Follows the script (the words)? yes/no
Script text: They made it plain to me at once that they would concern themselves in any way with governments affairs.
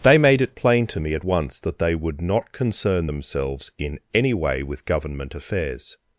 no